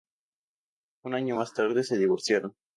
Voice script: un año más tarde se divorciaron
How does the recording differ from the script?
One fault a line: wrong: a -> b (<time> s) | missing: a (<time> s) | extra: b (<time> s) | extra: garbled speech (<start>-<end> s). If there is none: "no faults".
no faults